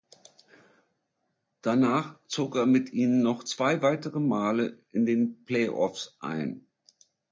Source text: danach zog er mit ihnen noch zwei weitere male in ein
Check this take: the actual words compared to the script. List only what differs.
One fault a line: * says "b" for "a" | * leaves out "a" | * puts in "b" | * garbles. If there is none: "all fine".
* puts in "den play offs"